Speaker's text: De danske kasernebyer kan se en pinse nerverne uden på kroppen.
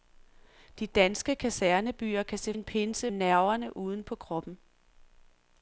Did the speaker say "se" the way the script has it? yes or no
yes